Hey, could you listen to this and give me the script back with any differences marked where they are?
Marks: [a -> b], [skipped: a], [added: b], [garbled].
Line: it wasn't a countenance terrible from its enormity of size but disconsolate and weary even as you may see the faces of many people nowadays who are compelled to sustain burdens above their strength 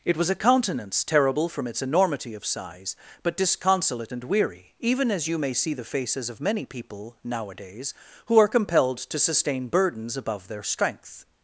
it [wasn't -> was] a countenance terrible from its enormity of size but disconsolate and weary even as you may see the faces of many people nowadays who are compelled to sustain burdens above their strength